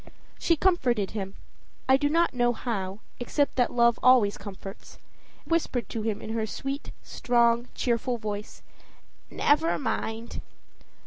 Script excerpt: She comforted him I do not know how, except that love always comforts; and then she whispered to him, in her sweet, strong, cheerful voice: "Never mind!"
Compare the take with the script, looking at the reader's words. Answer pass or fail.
fail